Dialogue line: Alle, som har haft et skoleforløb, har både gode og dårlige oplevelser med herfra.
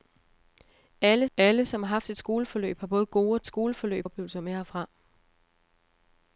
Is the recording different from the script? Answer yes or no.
yes